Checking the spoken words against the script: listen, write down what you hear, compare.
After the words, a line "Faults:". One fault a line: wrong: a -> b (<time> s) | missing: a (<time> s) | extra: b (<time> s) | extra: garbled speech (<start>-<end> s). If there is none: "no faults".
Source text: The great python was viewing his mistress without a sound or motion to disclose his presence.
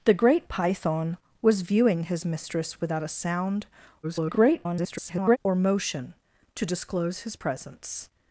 The great python was viewing his mistress without a sound [garbled] or motion to disclose his presence.
Faults:
extra: garbled speech (4.0-5.4 s)